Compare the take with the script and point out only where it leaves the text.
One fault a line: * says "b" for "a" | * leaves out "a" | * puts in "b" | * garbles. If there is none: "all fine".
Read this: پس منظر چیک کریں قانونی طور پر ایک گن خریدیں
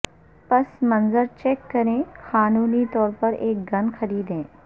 all fine